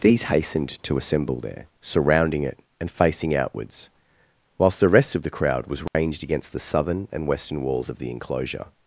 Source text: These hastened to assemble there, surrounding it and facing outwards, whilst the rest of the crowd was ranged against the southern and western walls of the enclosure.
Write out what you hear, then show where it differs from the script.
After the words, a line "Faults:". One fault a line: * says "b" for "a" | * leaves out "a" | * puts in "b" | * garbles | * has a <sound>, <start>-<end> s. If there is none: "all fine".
These hastened to assemble there, surrounding it and facing outwards, whilst the rest of the crowd was ranged against the southern and western walls of the enclosure.
Faults:
* has a dropout, 5.9-5.9 s